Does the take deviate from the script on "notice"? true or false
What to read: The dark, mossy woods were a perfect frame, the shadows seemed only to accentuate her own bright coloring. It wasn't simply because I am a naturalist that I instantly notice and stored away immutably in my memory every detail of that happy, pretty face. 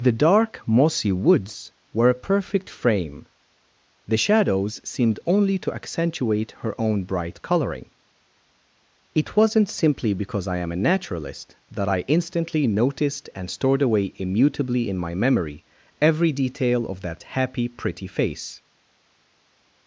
true